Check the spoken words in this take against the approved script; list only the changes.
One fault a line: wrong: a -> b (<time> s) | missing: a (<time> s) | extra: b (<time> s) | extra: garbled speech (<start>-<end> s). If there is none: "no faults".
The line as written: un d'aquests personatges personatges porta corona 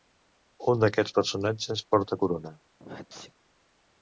missing: personatges (1.9 s)